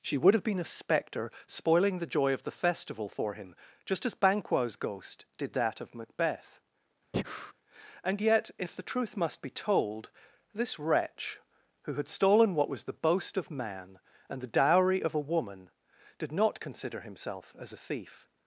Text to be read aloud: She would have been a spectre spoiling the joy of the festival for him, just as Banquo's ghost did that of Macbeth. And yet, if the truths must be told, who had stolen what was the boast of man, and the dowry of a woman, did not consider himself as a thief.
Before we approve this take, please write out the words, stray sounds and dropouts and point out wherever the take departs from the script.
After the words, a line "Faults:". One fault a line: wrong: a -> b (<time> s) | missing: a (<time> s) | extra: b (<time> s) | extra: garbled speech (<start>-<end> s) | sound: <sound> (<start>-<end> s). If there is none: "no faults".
She would have been a spectre spoiling the joy of the festival for him, just as Banquo's ghost did that of Macbeth. And yet, if the truth must be told, this wretch, who had stolen what was the boast of man, and the dowry of a woman, did not consider himself as a thief.
Faults:
sound: breath (7.1-7.5 s)
wrong: truths -> truth (8.8 s)
extra: this wretch (10.5 s)